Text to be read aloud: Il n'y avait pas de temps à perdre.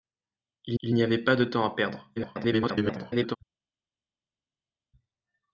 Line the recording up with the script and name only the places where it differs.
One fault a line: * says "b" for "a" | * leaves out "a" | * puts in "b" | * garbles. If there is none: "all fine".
* puts in "il"
* garbles